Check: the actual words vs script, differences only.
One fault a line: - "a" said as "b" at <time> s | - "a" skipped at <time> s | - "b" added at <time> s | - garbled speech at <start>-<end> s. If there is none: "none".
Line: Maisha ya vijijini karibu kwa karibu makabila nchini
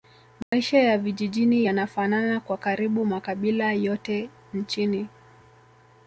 - "karibu" said as "yanafanana" at 1.6 s
- "yote" added at 3.7 s